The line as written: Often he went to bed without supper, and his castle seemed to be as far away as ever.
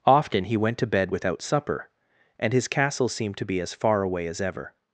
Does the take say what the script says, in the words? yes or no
yes